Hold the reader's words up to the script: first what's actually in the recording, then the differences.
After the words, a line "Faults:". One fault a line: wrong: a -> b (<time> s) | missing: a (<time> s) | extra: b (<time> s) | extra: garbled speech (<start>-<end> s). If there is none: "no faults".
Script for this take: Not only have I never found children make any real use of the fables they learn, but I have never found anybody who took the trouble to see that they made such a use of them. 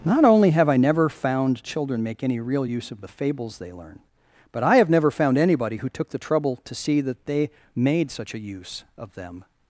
Not only have I never found children make any real use of the fables they learn, but I have never found anybody who took the trouble to see that they made such a use of them.
Faults:
no faults